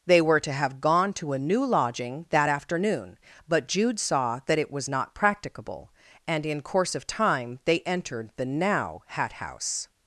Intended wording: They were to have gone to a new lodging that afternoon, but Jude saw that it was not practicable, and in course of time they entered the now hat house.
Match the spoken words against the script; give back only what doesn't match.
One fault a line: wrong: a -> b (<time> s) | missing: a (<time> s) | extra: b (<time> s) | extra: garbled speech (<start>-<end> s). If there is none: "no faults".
no faults